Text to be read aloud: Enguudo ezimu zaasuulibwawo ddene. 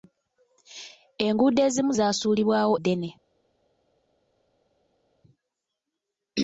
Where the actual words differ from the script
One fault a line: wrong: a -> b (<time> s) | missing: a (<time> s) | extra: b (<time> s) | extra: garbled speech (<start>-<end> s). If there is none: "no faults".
no faults